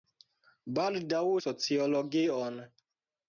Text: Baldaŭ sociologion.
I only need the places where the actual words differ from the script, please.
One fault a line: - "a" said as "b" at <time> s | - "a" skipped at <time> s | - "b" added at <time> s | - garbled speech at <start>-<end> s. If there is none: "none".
none